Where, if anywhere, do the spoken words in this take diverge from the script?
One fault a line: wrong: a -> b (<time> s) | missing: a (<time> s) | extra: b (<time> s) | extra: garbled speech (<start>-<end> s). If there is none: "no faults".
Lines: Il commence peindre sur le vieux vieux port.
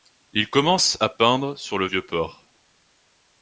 extra: à (1.0 s)
missing: vieux (2.1 s)